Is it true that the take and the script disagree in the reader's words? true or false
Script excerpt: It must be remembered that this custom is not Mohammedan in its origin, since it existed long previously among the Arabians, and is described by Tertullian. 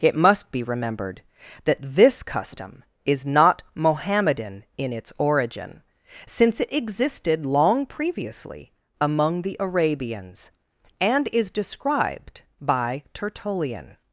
false